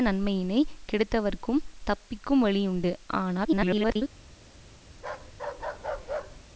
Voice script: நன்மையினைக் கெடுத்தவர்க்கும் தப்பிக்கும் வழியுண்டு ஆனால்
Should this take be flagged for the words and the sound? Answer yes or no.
yes